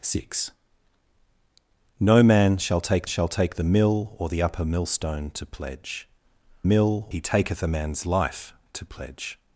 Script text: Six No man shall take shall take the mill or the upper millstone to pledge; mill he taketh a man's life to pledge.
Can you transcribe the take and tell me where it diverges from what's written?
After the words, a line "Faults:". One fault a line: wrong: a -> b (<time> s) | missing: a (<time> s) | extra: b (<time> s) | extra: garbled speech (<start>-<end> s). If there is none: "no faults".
Six No man shall take shall take the mill or the upper millstone to pledge; mill he taketh a man's life to pledge.
Faults:
no faults